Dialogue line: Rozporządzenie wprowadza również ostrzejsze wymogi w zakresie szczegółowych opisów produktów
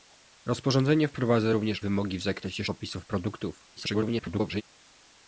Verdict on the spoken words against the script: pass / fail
fail